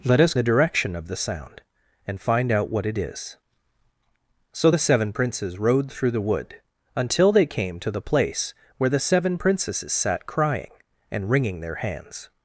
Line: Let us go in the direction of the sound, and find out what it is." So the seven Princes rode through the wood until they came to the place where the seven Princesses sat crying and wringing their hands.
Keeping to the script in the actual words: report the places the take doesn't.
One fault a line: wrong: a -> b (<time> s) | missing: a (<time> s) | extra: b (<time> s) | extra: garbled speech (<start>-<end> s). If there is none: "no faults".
missing: go in (0.3 s)